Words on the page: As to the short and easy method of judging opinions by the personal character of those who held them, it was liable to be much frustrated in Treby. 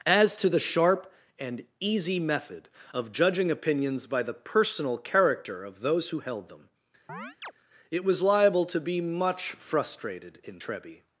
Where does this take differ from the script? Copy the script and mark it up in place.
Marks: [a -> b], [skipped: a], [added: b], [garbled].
As to the [short -> sharp] and easy method of judging opinions by the personal character of those who held them, it was liable to be much frustrated in Treby.